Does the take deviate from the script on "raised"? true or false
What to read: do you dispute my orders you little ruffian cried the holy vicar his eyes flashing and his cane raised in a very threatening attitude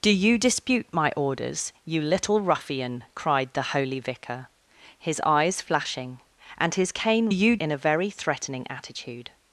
true